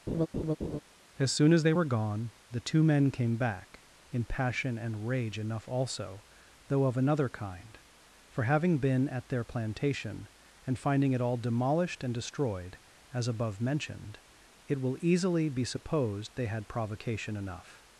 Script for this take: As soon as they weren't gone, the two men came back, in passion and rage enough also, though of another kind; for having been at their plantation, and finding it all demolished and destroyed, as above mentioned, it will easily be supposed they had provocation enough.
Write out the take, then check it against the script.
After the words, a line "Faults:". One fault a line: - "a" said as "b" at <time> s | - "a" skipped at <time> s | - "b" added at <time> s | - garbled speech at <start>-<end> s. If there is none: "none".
As soon as they were gone, the two men came back, in passion and rage enough also, though of another kind; for having been at their plantation, and finding it all demolished and destroyed, as above mentioned, it will easily be supposed they had provocation enough.
Faults:
- "weren't" said as "were" at 1.7 s